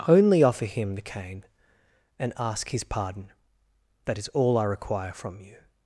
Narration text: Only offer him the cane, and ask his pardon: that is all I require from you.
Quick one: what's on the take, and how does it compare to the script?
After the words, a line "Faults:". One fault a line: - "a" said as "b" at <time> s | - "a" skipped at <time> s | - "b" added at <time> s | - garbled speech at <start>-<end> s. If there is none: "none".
Only offer him the cane, and ask his pardon: that is all I require from you.
Faults:
none